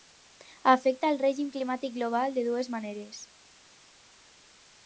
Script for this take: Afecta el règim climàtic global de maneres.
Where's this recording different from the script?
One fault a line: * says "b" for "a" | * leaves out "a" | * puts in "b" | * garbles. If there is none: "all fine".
* puts in "dues"